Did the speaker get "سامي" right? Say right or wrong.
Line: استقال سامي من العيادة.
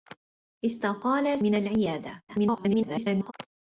wrong